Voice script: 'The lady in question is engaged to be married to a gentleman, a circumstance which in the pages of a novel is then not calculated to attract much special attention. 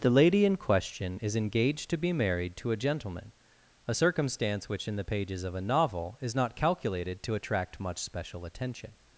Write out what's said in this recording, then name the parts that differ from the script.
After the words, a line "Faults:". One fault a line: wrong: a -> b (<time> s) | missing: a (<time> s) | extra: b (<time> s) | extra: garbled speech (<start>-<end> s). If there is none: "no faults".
'The lady in question is engaged to be married to a gentleman, a circumstance which in the pages of a novel is not calculated to attract much special attention.
Faults:
missing: then (6.4 s)